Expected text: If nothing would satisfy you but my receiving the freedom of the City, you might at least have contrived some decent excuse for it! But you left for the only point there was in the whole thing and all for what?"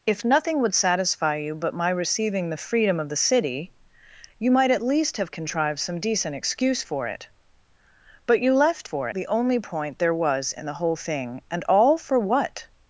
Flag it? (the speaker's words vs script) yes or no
no